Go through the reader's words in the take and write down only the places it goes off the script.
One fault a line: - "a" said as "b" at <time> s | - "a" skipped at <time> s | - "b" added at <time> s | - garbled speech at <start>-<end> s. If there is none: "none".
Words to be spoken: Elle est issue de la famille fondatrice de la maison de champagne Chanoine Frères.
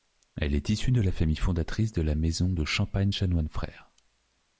none